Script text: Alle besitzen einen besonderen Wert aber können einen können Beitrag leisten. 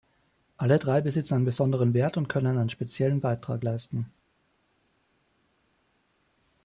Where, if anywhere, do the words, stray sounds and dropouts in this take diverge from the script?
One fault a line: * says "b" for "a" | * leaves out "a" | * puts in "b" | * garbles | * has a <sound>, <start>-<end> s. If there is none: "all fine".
* puts in "drei"
* says "und" for "aber"
* says "speziellen" for "können"